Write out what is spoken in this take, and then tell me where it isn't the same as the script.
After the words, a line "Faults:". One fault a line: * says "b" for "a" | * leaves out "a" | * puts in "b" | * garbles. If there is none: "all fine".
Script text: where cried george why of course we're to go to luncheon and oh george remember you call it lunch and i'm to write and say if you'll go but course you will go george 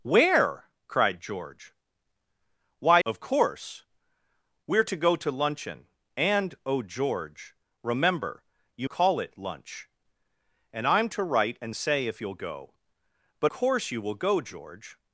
where cried george why of course we're to go to luncheon and oh george remember you call it lunch and i'm to write and say if you'll go but course you will go george
Faults:
all fine